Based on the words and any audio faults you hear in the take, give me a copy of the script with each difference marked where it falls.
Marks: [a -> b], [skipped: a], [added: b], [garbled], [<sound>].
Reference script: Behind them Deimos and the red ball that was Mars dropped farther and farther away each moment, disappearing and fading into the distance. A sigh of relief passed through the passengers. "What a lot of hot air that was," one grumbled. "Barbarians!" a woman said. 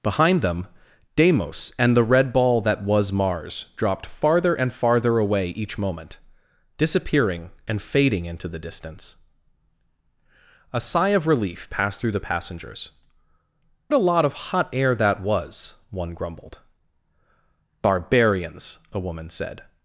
Behind them Deimos and the red ball that was Mars dropped farther and farther away each moment, disappearing and fading into the distance. A sigh of relief passed through the passengers. [skipped: "What] a lot of hot air that was," one grumbled. "Barbarians!" a woman said.